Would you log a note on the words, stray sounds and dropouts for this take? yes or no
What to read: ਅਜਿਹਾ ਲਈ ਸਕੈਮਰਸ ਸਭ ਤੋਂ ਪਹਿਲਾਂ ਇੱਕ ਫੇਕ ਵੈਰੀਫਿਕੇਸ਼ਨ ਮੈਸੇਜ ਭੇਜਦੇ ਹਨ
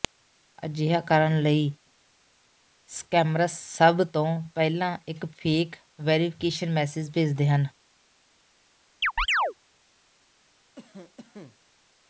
yes